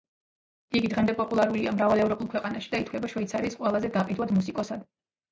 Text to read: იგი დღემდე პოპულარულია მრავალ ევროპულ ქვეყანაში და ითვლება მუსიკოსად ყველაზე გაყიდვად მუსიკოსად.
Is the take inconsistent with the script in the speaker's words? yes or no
yes